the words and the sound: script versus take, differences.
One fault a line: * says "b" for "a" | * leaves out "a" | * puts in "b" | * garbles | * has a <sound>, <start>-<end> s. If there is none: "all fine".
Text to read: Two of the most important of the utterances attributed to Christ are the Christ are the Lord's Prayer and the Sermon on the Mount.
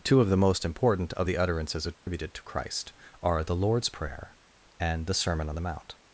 * has a dropout, 1.9-2.1 s
* leaves out "Christ are the"